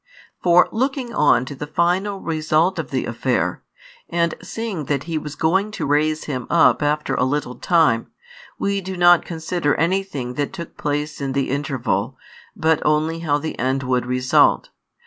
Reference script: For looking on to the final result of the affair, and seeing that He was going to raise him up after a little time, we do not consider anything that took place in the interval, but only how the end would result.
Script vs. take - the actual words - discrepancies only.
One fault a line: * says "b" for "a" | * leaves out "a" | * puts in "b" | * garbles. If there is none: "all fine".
all fine